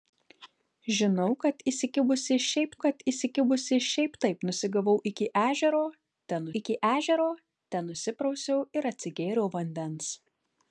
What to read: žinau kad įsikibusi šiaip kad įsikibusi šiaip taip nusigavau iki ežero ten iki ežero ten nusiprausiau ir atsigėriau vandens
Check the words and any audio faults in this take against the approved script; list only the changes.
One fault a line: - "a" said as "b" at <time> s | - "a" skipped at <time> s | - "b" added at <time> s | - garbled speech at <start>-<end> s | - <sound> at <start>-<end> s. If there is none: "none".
none